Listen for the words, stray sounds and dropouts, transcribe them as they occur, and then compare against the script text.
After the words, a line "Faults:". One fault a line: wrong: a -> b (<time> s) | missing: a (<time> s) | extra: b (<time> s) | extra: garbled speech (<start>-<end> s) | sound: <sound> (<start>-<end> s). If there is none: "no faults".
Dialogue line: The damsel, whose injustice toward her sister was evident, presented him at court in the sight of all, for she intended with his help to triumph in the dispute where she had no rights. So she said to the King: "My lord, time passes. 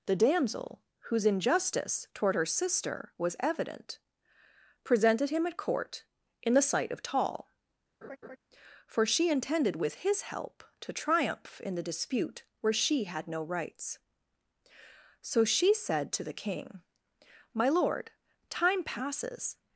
The damsel, whose injustice toward her sister was evident, presented him at court in the sight of tall, for she intended with his help to triumph in the dispute where she had no rights. So she said to the King: "My lord, time passes.
Faults:
wrong: all -> tall (7.0 s)
sound: laugh (8.0-8.4 s)